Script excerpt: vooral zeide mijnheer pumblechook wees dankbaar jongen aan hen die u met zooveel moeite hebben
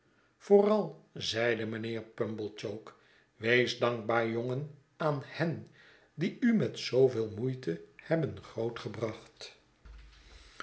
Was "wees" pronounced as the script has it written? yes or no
yes